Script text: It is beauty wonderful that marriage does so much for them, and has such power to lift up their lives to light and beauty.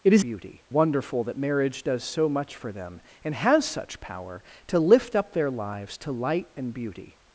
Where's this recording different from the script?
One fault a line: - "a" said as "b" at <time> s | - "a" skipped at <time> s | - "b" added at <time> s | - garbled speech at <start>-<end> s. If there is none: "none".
none